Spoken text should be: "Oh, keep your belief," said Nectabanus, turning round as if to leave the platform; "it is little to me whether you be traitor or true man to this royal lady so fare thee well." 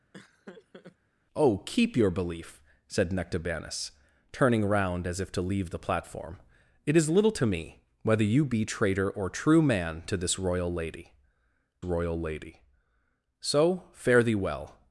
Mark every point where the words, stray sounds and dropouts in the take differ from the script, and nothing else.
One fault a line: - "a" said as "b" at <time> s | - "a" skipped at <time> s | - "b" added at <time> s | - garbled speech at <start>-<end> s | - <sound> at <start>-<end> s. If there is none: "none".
- laugh at 0.1-1.0 s
- "royal lady" added at 11.8 s